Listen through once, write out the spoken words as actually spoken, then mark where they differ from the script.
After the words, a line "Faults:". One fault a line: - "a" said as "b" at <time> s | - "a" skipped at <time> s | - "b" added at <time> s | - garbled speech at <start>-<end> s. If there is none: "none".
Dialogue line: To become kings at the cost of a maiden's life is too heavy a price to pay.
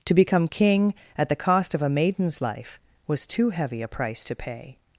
To become king at the cost of a maiden's life was too heavy a price to pay.
Faults:
- "kings" said as "king" at 0.5 s
- "is" said as "was" at 3.1 s